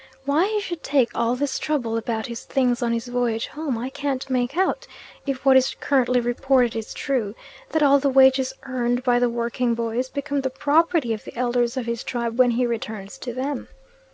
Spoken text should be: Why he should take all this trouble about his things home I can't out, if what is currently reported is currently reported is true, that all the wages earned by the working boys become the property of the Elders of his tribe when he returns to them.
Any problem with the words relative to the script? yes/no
yes